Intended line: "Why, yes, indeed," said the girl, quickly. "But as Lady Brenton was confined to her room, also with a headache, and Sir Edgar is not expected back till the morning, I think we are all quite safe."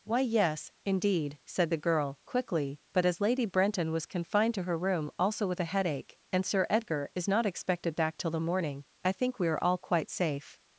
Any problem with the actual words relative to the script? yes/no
no